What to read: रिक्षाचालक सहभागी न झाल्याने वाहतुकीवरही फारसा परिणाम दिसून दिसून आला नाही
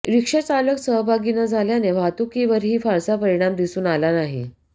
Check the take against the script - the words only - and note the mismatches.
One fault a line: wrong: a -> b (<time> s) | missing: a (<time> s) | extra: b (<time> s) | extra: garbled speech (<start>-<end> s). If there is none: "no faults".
missing: दिसून (3.9 s)